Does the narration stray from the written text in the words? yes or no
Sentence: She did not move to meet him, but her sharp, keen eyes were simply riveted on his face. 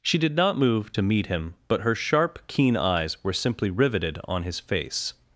no